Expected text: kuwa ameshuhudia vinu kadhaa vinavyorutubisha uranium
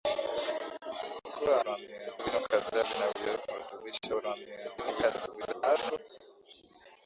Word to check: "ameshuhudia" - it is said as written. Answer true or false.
false